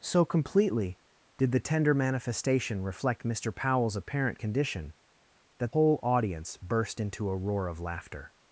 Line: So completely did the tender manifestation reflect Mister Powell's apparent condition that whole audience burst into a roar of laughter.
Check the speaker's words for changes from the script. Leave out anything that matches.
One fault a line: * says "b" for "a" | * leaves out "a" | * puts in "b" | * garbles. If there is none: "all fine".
all fine